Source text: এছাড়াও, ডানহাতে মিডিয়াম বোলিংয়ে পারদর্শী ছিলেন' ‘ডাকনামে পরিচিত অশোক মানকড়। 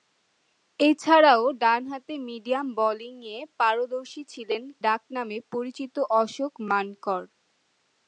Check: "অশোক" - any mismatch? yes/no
no